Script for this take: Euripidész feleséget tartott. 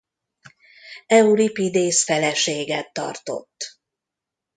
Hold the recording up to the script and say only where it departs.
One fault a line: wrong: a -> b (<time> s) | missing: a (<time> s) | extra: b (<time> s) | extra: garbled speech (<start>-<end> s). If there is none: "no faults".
no faults